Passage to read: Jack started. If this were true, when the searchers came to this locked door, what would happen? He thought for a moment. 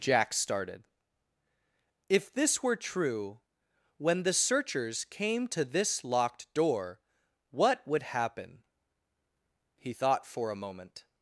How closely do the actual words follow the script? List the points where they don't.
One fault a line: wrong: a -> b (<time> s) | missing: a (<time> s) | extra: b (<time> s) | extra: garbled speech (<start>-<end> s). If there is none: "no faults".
no faults